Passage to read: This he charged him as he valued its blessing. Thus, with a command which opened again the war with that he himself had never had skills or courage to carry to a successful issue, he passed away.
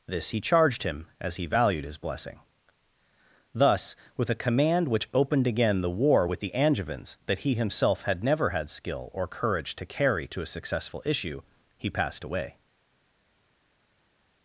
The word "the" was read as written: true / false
true